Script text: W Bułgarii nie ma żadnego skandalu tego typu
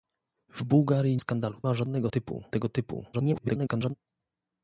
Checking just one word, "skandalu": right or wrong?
wrong